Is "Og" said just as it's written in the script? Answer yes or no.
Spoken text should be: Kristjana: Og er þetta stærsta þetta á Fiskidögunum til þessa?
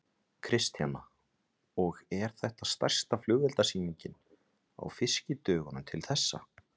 yes